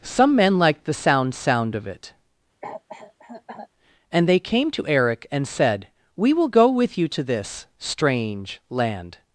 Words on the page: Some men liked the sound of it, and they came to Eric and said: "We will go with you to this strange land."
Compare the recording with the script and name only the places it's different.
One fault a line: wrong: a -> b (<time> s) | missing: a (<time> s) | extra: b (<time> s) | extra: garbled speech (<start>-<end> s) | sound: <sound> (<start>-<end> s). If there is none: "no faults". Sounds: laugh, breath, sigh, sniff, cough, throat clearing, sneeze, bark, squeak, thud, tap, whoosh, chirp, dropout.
extra: sound (1.4 s)
sound: cough (2.6-3.7 s)